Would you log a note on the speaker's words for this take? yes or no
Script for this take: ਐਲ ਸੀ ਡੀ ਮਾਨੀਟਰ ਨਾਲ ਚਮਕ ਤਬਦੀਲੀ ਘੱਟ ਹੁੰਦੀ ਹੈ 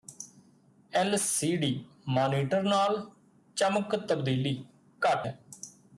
yes